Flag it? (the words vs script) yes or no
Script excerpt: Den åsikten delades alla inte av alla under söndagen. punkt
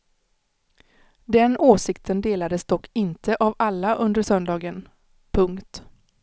yes